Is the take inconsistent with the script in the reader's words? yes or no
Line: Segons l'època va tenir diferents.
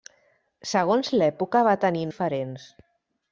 no